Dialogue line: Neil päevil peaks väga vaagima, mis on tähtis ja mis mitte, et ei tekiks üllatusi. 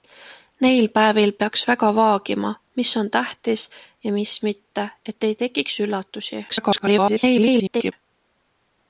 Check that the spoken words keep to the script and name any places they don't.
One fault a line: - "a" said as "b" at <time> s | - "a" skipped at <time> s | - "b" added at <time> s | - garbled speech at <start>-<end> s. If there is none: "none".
- garbled speech at 6.5-7.9 s